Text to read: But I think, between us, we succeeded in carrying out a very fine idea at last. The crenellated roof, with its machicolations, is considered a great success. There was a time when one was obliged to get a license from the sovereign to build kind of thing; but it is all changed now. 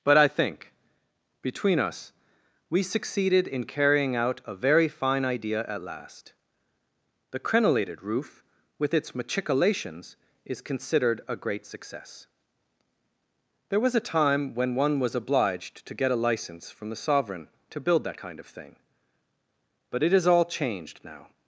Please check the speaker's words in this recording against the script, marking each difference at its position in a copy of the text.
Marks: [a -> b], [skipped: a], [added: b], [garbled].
But I think, between us, we succeeded in carrying out a very fine idea at last. The crenellated roof, with its machicolations, is considered a great success. There was a time when one was obliged to get a license from the sovereign to build [added: that] kind of thing; but it is all changed now.